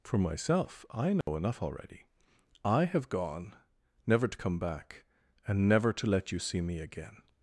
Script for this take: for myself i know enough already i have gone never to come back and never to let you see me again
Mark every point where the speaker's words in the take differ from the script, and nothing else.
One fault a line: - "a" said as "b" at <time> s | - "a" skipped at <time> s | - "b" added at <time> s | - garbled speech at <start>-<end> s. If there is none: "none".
none